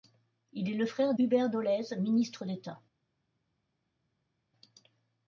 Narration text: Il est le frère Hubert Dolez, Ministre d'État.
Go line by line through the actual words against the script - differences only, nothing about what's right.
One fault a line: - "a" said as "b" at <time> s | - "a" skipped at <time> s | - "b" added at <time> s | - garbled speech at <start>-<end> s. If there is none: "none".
none